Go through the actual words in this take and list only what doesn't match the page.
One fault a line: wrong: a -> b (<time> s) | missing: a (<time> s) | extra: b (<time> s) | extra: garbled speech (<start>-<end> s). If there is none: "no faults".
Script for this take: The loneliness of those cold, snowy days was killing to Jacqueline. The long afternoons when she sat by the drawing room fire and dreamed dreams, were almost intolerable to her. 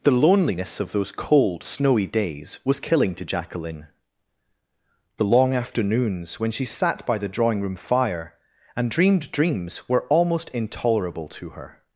no faults